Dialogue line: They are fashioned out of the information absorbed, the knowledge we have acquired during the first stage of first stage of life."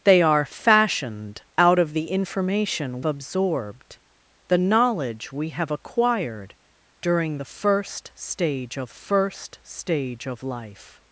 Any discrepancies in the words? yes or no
no